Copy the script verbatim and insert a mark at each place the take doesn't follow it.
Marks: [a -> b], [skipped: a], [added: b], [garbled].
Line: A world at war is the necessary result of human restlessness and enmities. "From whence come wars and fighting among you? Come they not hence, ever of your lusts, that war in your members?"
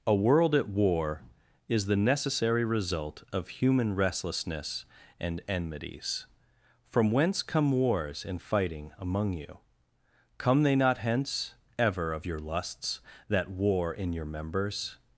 A world at war is the necessary result of human restlessness and enmities. "From whence come wars and fighting among you? Come they not hence, ever of your lusts, that war in your members?"